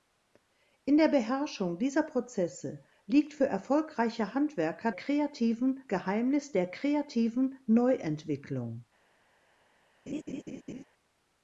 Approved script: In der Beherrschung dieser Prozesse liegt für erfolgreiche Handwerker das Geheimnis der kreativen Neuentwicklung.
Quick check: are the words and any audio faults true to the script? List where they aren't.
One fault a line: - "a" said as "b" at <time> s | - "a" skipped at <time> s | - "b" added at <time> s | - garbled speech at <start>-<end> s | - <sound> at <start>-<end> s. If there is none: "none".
- "das" said as "kreativen" at 4.9 s
- laugh at 10.1-10.8 s